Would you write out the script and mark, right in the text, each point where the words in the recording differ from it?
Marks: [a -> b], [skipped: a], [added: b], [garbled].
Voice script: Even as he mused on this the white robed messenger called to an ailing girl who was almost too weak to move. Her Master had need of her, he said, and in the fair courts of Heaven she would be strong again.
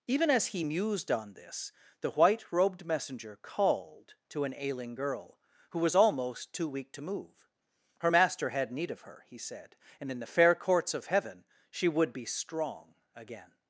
Even as he mused on this the white robed messenger called to an ailing girl who was almost too weak to move. Her Master had need of her, he said, and in the fair courts of Heaven she would be strong again.